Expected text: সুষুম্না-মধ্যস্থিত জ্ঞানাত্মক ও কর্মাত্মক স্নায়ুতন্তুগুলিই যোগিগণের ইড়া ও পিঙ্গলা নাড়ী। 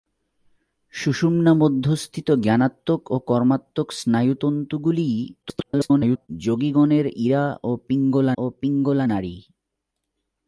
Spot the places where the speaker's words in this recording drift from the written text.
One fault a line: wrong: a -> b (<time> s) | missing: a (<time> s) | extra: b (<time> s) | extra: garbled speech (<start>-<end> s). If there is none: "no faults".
extra: garbled speech (5.4-6.3 s)
extra: ও পিঙ্গলা (8.4 s)